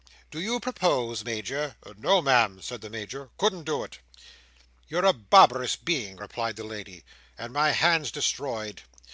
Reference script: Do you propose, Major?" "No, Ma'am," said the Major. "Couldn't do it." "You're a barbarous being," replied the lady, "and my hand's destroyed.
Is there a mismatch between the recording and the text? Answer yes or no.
no